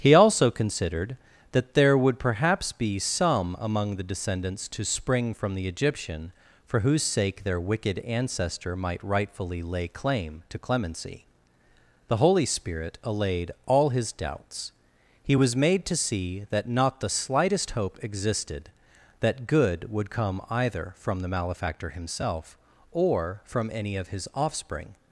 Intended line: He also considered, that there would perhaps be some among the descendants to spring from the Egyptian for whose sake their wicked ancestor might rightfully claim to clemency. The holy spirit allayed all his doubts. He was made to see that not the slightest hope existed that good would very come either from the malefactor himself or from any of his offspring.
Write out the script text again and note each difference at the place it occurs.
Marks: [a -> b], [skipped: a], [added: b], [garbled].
He also considered, that there would perhaps be some among the descendants to spring from the Egyptian for whose sake their wicked ancestor might rightfully [added: lay] claim to clemency. The holy spirit allayed all his doubts. He was made to see that not the slightest hope existed that good would [skipped: very] come either from the malefactor himself or from any of his offspring.